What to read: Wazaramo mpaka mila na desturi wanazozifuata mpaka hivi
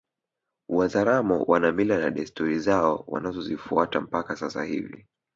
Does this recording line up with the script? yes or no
no